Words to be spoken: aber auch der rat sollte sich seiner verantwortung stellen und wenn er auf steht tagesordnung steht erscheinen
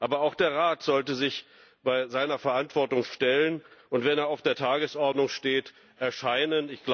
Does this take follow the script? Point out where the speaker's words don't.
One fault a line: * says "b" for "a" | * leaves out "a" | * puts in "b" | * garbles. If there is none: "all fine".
* says "der" for "steht"